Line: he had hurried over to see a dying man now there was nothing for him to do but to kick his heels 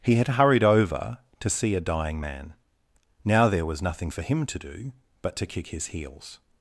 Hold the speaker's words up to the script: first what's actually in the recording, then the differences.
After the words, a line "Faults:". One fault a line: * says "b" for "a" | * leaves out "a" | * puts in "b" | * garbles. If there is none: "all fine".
he had hurried over to see a dying man now there was nothing for him to do but to kick his heels
Faults:
all fine